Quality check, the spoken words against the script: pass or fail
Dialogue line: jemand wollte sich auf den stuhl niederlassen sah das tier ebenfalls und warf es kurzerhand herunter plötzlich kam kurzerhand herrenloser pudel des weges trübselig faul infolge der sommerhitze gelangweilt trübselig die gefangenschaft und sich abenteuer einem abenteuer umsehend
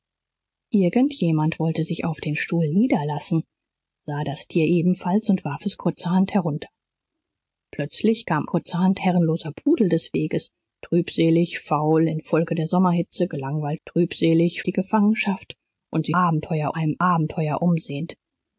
pass